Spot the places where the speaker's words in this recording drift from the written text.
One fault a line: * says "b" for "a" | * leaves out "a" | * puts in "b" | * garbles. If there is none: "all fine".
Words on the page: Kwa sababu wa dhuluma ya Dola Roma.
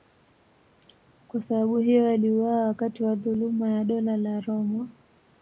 * puts in "hiyo aliuawa wakati"
* puts in "la"